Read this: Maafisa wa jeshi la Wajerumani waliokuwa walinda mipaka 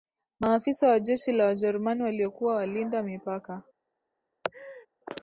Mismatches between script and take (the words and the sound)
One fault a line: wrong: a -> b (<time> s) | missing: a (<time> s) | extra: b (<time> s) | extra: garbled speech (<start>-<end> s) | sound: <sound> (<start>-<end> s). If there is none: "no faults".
sound: laugh (4.4-4.9 s)